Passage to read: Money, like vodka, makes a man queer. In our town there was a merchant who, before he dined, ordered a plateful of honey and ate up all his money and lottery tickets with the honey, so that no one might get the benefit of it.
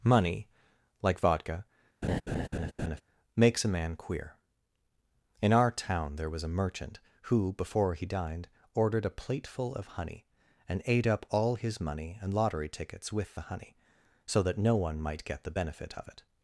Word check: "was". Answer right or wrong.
right